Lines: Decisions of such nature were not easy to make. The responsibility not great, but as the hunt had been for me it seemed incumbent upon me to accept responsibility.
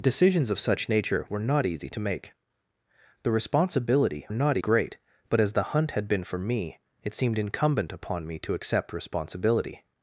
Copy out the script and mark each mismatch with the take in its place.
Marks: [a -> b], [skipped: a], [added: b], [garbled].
Decisions of such nature were not easy to make. The responsibility not great, but as the hunt had been for me it seemed incumbent upon me to accept responsibility.